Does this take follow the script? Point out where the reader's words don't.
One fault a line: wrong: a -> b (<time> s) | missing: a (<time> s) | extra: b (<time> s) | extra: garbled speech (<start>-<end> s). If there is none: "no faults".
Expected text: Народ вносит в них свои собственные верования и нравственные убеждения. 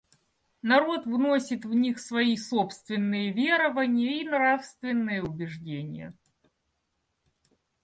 no faults